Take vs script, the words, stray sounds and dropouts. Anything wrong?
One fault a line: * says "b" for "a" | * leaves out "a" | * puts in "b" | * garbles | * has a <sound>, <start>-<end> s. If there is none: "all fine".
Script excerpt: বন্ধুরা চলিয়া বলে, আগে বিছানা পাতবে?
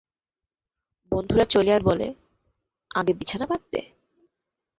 all fine